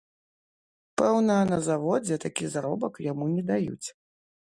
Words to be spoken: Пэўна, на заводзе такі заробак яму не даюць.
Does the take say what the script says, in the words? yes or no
yes